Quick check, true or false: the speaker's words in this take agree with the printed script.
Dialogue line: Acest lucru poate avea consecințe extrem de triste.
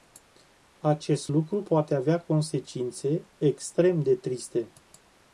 true